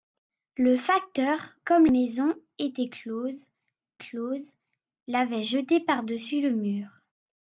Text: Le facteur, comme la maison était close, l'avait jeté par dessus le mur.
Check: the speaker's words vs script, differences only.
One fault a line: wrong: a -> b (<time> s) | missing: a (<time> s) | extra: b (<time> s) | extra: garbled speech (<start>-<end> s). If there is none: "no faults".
missing: la (1.9 s)
extra: close (4.0 s)